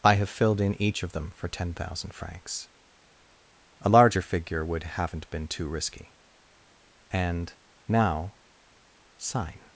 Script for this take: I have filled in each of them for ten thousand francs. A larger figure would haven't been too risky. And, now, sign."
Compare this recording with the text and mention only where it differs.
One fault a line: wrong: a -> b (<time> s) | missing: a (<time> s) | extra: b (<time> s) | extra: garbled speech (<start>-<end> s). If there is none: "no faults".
no faults